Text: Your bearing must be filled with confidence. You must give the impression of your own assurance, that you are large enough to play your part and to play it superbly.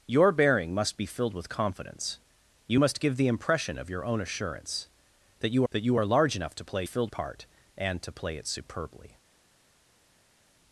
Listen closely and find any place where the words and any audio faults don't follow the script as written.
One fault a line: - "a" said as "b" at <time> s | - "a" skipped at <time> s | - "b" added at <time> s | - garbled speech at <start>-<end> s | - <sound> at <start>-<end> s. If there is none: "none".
- "that you" added at 5.7 s
- "your" said as "filled" at 6.8 s